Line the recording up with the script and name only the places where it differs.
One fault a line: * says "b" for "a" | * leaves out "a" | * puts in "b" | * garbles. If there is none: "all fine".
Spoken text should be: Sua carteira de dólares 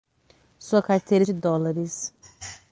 all fine